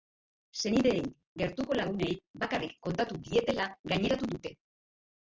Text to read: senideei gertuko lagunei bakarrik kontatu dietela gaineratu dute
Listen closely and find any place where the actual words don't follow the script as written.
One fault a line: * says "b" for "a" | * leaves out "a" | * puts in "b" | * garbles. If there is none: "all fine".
all fine